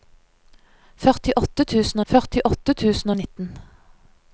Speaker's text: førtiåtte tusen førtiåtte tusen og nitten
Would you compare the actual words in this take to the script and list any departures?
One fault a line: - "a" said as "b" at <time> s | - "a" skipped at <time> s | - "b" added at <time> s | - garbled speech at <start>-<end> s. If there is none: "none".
none